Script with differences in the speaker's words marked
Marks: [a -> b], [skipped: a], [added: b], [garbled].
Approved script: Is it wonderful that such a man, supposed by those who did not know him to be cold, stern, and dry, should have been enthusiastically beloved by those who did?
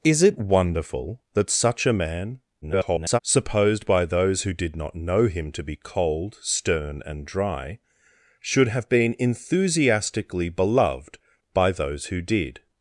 Is it wonderful that such a man, [garbled] supposed by those who did not know him to be cold, stern, and dry, should have been enthusiastically beloved by those who did?